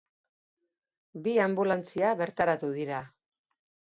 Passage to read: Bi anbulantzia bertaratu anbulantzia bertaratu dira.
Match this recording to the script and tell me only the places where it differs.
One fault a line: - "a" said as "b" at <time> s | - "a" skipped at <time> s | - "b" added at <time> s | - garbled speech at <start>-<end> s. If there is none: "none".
- "anbulantzia bertaratu" skipped at 2.7 s